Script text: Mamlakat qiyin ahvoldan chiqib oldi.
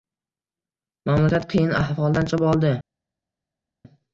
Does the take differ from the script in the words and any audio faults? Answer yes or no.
no